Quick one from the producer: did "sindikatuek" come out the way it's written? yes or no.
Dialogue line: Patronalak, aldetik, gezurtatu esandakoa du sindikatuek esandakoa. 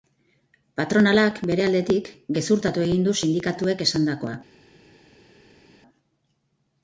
yes